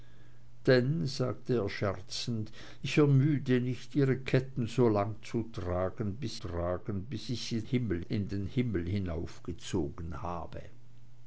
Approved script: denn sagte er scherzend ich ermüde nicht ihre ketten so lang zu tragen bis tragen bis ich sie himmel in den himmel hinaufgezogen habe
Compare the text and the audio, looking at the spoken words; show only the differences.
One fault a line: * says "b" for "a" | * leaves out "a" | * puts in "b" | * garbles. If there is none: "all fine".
all fine